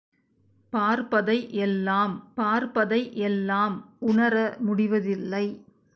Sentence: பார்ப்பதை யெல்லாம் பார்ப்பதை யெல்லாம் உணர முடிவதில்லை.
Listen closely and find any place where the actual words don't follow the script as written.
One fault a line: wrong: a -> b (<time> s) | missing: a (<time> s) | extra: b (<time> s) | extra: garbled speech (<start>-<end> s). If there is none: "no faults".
no faults